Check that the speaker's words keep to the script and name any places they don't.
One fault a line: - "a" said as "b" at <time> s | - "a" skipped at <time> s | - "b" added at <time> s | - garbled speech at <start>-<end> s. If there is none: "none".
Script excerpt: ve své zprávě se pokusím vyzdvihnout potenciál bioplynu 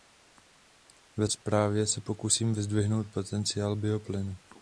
- "své" skipped at 1.3 s